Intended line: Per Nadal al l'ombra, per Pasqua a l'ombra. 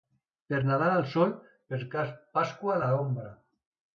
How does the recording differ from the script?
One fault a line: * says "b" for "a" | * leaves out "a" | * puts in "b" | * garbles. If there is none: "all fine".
* says "sol" for "l'ombra"